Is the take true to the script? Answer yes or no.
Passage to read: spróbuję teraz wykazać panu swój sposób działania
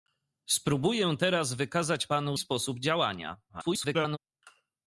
no